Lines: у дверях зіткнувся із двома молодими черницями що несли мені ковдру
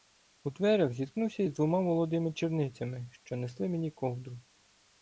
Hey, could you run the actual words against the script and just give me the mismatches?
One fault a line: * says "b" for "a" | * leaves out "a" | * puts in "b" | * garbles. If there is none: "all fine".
all fine